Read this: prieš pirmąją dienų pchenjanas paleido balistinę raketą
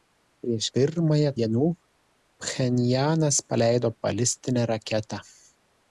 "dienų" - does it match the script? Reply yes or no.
yes